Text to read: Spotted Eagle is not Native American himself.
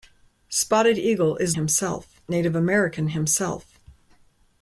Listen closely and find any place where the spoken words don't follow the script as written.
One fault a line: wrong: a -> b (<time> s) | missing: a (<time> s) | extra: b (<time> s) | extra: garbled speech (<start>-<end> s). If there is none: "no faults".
wrong: not -> himself (1.5 s)